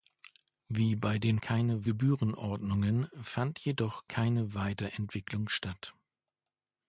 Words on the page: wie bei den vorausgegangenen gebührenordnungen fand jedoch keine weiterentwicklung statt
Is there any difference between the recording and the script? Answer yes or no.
yes